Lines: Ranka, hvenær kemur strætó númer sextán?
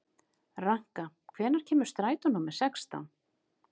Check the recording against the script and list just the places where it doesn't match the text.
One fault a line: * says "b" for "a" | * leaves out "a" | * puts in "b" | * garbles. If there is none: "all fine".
all fine